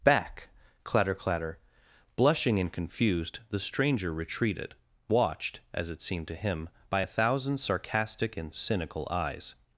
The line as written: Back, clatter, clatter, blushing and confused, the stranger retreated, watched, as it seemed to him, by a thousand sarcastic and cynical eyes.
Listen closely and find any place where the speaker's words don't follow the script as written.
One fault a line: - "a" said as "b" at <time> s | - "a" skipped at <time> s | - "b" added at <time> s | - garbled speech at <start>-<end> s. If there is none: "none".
none